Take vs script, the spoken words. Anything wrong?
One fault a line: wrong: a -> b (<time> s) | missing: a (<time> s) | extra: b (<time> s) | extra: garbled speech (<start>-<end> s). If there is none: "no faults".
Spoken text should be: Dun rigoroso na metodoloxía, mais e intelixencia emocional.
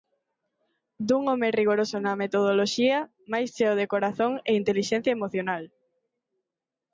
extra: home (1.3 s)
extra: cheo de corazón (3.5 s)